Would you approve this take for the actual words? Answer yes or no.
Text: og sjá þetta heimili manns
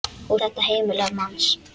no